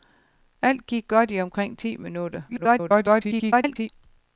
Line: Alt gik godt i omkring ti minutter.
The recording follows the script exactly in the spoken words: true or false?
false